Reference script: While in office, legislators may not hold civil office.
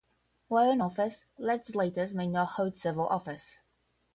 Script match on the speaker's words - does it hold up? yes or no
yes